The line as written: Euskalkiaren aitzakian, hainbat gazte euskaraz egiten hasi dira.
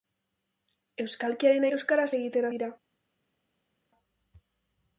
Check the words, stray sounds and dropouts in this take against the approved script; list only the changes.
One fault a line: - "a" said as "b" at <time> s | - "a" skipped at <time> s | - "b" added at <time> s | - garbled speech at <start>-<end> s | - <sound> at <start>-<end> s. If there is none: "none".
- "aitzakian hainbat gazte" skipped at 1.7 s
- "hasi" skipped at 2.5 s